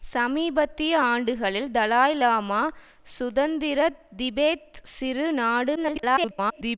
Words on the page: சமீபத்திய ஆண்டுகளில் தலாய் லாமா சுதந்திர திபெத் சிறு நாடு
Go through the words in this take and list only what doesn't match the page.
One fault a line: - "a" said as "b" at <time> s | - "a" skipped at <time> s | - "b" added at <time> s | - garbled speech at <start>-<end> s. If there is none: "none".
- garbled speech at 5.8-6.8 s